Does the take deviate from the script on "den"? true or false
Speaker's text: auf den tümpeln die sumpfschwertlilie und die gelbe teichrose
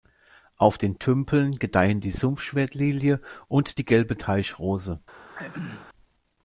false